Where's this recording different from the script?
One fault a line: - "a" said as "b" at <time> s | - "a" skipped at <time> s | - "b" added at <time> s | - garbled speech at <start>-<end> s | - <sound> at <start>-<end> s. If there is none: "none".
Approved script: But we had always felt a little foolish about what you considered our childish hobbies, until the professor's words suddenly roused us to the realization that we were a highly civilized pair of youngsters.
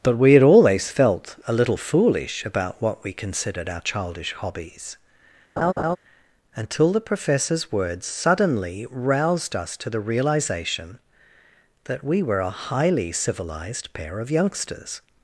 - "you" said as "we" at 3.0 s
- laugh at 5.6-6.0 s